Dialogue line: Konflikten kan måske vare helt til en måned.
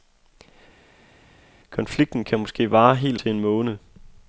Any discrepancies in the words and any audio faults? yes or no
no